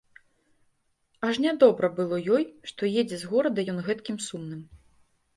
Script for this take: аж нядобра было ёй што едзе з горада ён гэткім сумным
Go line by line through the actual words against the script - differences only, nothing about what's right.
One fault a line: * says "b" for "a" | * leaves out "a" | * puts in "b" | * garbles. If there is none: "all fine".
all fine